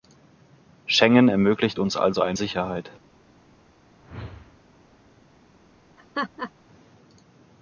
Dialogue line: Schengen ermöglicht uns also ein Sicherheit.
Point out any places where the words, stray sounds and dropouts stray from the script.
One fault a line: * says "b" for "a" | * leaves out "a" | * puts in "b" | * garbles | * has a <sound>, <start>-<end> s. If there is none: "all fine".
* has a whoosh, 4.0-4.6 s
* has a laugh, 6.0-6.5 s